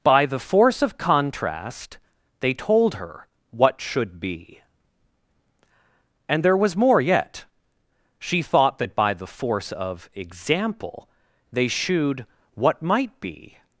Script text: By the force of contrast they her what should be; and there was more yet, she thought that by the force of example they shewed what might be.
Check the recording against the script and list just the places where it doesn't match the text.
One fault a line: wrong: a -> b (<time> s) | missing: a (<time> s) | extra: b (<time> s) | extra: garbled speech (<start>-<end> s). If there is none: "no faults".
extra: told (2.5 s)